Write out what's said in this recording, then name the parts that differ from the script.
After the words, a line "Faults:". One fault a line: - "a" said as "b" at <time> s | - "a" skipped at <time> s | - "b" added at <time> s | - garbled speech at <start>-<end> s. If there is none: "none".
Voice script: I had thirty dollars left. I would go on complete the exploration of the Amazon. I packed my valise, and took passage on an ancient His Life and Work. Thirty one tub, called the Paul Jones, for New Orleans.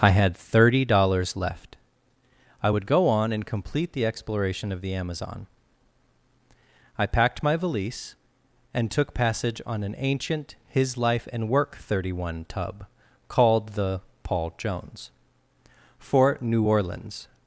I had thirty dollars left. I would go on and complete the exploration of the Amazon. I packed my valise, and took passage on an ancient His Life and Work. Thirty one tub, called the Paul Jones, for New Orleans.
Faults:
- "and" added at 3.3 s